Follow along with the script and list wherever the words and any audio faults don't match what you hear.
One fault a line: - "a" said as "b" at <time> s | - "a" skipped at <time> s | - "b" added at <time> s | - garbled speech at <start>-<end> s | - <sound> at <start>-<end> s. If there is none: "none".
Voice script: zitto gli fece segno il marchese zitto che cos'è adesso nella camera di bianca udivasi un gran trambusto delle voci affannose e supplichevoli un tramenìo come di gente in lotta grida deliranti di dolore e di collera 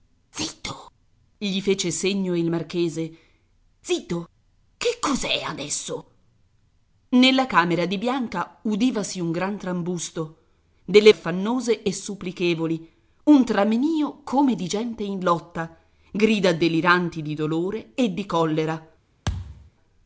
- "voci" skipped at 11.1 s
- thud at 19.3-19.7 s